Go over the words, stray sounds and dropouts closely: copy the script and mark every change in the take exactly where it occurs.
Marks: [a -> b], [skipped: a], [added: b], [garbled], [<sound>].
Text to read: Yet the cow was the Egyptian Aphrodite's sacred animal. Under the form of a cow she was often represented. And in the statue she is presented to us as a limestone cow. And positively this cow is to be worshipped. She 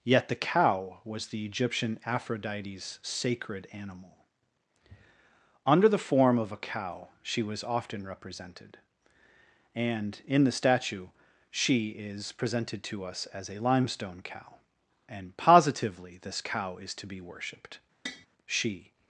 Yet the cow was the Egyptian Aphrodite's sacred animal. Under the form of a cow she was often represented. And in the statue she is presented to us as a limestone cow. And positively this cow is to be worshipped. [tap] She